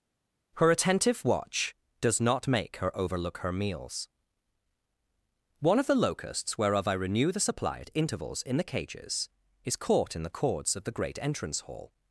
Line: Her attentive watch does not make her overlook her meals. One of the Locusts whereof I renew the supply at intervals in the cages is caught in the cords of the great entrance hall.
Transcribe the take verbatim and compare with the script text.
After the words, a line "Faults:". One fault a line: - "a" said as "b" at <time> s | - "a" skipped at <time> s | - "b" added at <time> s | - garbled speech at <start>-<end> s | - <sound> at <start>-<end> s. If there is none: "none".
Her attentive watch does not make her overlook her meals. One of the Locusts whereof I renew the supply at intervals in the cages is caught in the cords of the great entrance hall.
Faults:
none